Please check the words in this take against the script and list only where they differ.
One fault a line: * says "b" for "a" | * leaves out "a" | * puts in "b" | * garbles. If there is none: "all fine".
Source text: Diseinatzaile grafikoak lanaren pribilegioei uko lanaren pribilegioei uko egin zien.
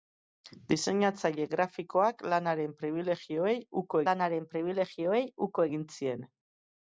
all fine